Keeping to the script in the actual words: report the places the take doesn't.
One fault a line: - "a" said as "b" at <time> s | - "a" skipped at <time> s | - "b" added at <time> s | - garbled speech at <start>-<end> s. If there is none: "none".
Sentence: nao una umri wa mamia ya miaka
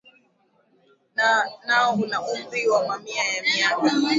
none